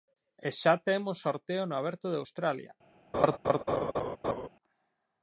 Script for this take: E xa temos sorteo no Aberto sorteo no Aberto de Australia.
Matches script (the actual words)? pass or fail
fail